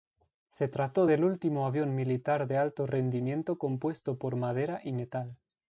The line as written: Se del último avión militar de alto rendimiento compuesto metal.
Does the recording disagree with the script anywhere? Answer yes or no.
yes